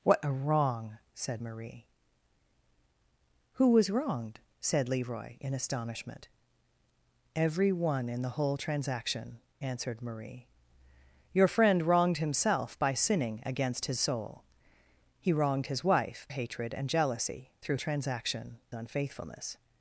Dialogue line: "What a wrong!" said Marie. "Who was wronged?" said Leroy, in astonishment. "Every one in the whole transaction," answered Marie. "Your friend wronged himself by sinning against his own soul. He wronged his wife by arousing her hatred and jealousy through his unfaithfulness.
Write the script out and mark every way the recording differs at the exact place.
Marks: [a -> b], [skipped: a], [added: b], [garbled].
"What a wrong!" said Marie. "Who was wronged?" said Leroy, in astonishment. "Every one in the whole transaction," answered Marie. "Your friend wronged himself by sinning against his [skipped: own] soul. He wronged his wife [skipped: by arousing her] hatred and jealousy through [his -> transaction] unfaithfulness.